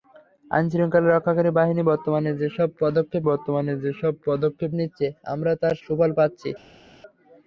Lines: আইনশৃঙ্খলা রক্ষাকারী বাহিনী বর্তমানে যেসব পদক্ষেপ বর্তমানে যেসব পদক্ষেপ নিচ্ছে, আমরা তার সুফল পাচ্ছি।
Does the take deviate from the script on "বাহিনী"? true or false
false